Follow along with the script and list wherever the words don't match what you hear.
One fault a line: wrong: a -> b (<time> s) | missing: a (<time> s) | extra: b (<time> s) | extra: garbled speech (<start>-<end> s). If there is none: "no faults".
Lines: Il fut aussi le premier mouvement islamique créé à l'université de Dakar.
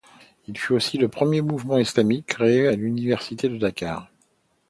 no faults